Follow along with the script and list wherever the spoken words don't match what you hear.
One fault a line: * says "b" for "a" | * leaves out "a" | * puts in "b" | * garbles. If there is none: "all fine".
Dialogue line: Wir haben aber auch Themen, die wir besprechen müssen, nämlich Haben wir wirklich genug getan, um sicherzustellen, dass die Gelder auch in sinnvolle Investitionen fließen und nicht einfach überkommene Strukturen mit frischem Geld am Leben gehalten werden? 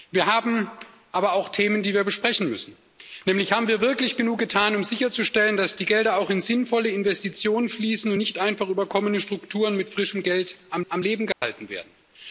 * puts in "am"